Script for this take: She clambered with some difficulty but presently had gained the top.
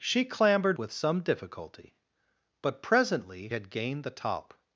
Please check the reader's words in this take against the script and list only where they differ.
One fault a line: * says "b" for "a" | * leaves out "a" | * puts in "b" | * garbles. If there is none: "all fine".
all fine